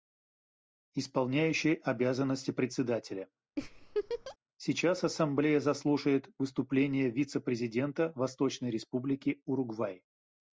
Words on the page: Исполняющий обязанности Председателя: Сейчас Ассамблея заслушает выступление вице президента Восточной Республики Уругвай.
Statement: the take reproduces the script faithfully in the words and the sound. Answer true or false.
false